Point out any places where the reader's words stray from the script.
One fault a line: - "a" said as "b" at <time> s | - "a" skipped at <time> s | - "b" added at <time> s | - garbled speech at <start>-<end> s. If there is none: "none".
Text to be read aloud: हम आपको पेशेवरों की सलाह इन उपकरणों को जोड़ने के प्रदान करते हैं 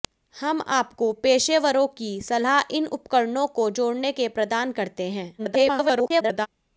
- garbled speech at 5.4-6.5 s